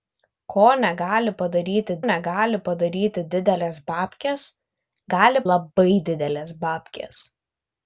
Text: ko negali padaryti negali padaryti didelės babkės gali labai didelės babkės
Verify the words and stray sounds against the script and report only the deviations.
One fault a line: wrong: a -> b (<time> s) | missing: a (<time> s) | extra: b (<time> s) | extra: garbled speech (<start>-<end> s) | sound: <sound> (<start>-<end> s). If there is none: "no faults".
no faults